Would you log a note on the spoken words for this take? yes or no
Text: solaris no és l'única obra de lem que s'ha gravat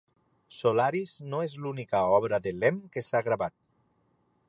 no